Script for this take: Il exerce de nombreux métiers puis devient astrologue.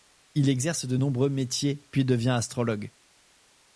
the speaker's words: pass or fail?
pass